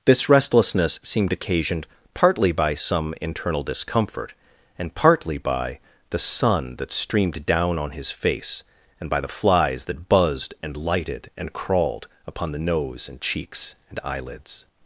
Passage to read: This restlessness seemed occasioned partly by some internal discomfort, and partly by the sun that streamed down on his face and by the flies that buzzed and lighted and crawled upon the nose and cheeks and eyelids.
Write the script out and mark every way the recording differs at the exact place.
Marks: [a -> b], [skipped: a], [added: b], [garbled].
This restlessness seemed occasioned partly by some internal discomfort, and partly by the sun that streamed down on his face and by the flies that buzzed and lighted and crawled upon the nose and cheeks and eyelids.